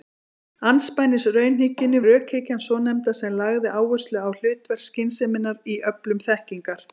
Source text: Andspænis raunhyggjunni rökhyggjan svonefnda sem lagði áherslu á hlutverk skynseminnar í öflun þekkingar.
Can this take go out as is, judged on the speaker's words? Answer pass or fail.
pass